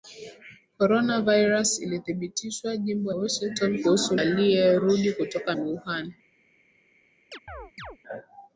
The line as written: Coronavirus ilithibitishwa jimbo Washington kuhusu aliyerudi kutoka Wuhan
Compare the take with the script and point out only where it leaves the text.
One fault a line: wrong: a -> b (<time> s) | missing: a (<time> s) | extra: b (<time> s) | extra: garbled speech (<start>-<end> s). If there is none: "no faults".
no faults